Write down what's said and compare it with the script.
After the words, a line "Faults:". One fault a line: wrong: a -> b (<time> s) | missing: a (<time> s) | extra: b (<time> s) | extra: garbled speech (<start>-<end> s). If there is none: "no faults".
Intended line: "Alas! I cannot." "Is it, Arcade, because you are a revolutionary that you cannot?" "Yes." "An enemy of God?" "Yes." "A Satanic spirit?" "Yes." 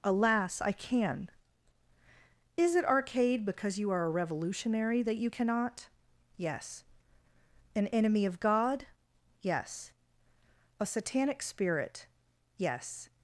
"Alas! I can." "Is it, Arcade, because you are a revolutionary that you cannot?" "Yes." "An enemy of God?" "Yes." "A Satanic spirit?" "Yes."
Faults:
wrong: cannot -> can (0.7 s)